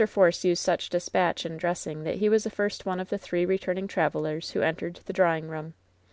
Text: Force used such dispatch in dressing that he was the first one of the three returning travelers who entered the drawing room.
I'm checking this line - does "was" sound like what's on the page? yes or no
yes